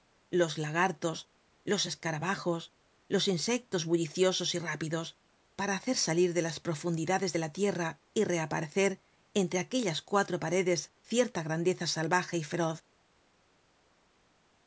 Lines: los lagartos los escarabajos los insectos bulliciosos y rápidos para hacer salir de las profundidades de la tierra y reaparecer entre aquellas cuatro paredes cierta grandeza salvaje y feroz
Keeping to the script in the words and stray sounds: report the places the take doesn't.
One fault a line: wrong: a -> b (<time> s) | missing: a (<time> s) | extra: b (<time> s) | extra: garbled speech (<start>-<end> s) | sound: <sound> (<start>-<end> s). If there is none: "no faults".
no faults